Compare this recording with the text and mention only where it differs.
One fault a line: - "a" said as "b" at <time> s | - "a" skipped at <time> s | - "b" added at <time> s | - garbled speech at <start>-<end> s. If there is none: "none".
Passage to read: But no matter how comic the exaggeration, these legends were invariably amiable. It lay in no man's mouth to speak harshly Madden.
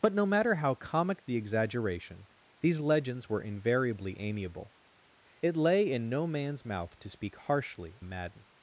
none